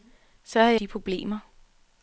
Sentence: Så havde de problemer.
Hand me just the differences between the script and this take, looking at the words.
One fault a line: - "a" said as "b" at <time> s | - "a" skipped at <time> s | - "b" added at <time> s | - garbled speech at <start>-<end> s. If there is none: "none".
none